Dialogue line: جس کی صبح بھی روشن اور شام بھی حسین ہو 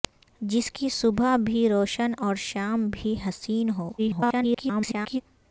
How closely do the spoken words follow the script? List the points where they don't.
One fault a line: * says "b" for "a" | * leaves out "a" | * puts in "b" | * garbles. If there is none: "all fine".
* garbles